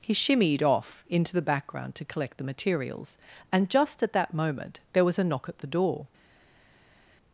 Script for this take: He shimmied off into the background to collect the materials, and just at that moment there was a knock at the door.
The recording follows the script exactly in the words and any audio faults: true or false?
true